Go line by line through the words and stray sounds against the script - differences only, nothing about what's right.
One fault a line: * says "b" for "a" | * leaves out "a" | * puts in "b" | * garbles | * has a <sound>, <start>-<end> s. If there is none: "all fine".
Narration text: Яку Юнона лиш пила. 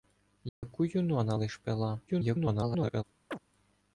* has a dropout, 0.5-0.6 s
* garbles
* has a chirp, 3.3-3.4 s